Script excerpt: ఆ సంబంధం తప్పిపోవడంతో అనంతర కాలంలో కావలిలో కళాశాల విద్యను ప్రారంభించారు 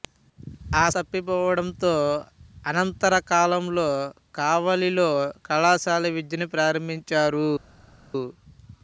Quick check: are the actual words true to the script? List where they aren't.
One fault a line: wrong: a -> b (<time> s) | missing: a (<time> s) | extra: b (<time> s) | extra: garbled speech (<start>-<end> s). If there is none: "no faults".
missing: సంబంధం (0.8 s)